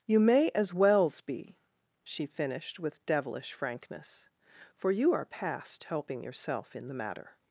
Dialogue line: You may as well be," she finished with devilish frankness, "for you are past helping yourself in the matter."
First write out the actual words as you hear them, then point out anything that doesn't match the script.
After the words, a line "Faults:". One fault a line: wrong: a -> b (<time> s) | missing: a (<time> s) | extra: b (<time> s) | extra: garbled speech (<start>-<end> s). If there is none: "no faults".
You may as wells be," she finished with devilish frankness, "for you are past helping yourself in the matter."
Faults:
wrong: well -> wells (0.7 s)